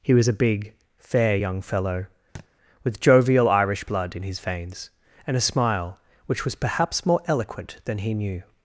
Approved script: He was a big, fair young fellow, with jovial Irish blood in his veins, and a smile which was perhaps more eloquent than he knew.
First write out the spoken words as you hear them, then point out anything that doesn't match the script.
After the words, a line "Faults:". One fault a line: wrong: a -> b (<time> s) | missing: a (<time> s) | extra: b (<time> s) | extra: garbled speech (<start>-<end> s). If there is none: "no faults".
He was a big, fair young fellow, with jovial Irish blood in his veins, and a smile which was perhaps more eloquent than he knew.
Faults:
no faults